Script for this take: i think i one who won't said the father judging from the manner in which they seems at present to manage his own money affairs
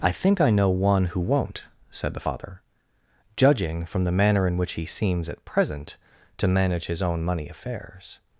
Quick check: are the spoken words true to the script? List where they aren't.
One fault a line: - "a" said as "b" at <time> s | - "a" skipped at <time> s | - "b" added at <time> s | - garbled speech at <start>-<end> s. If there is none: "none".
- "know" added at 0.5 s
- "they" said as "he" at 4.7 s